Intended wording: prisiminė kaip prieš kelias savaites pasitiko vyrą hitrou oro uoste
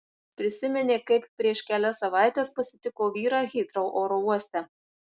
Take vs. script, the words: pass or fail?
pass